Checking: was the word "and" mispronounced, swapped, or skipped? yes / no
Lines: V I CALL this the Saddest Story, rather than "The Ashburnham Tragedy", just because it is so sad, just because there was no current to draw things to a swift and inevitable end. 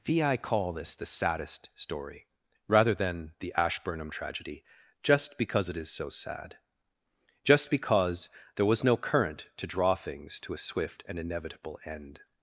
no